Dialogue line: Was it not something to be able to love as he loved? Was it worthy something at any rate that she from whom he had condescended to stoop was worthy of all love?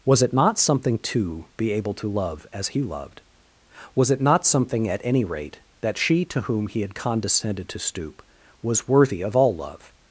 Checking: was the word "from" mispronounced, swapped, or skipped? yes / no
yes